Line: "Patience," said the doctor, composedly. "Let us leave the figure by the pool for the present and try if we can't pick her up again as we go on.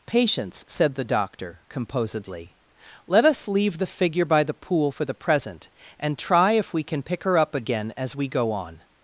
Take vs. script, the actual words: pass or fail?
fail